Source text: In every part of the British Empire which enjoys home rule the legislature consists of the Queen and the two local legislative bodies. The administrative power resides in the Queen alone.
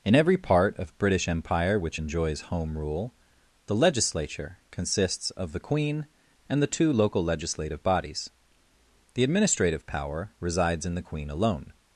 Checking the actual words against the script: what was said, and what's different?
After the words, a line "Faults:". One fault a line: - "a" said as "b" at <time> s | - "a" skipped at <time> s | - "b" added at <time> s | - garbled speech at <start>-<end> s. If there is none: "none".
In every part of British Empire which enjoys home rule the legislature consists of the Queen and the two local legislative bodies. The administrative power resides in the Queen alone.
Faults:
- "the" skipped at 1.0 s